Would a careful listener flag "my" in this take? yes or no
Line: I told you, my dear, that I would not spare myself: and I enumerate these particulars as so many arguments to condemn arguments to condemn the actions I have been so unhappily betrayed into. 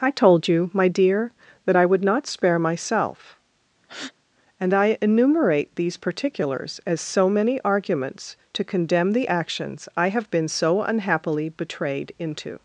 no